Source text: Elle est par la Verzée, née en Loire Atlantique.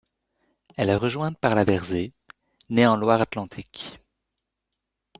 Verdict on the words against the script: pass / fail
fail